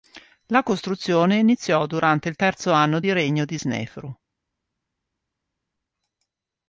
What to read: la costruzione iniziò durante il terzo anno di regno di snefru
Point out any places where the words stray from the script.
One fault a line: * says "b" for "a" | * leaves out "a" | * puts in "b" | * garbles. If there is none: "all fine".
all fine